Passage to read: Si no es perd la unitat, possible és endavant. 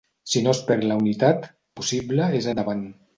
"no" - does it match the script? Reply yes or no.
yes